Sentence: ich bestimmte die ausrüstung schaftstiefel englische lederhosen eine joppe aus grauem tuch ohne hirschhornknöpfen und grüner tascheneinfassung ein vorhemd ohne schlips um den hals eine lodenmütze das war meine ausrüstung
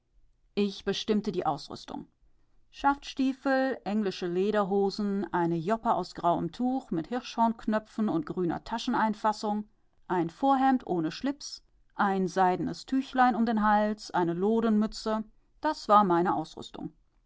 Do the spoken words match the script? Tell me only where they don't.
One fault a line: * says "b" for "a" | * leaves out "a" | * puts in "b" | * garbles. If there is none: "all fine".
* says "mit" for "ohne"
* puts in "ein seidenes tüchlein"